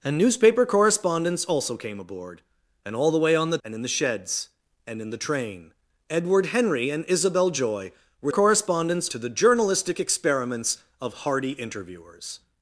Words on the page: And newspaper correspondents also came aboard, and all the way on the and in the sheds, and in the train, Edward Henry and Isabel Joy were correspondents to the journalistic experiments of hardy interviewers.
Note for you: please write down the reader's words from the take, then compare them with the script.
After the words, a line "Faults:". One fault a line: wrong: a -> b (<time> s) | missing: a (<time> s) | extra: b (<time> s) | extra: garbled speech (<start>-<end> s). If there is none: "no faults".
And newspaper correspondents also came aboard, and all the way on the and in the sheds, and in the train, Edward Henry and Isabel Joy were correspondents to the journalistic experiments of hardy interviewers.
Faults:
no faults